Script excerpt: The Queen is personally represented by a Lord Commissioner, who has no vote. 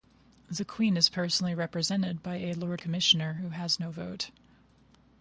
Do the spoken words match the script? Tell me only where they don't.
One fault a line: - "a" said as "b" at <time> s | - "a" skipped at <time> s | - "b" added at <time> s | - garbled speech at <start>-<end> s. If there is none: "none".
none